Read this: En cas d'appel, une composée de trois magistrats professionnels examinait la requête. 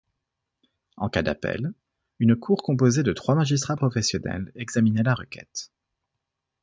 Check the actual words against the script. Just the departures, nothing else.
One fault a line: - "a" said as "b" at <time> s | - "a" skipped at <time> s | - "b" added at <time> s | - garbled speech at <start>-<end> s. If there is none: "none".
- "cour" added at 2.4 s